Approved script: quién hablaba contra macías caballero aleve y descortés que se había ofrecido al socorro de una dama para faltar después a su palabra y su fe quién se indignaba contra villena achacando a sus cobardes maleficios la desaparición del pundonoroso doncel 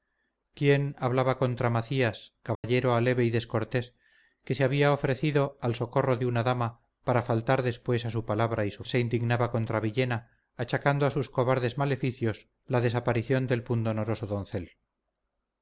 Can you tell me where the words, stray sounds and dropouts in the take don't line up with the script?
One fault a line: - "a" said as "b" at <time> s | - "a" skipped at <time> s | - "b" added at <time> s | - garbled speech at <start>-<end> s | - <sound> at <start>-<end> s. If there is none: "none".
- dropout at 2.5-2.6 s
- "fe quién" skipped at 8.8 s